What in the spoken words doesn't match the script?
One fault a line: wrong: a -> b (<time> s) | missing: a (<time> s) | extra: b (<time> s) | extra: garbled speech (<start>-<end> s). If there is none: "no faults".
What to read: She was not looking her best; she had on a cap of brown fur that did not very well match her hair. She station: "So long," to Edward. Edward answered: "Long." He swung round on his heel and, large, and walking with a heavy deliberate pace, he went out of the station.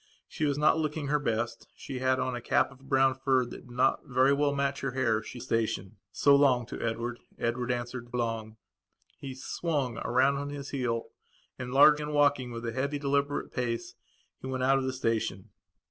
no faults